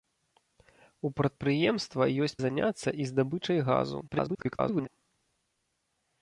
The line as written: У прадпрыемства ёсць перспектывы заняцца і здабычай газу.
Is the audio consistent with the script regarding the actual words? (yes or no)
no